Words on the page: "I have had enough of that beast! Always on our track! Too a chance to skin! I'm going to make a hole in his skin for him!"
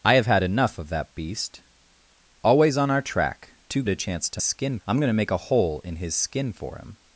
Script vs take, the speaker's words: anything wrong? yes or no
no